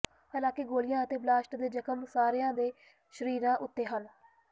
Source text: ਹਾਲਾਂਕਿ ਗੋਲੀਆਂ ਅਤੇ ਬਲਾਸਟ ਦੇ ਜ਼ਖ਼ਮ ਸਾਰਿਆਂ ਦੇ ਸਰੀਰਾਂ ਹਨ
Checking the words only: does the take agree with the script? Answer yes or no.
no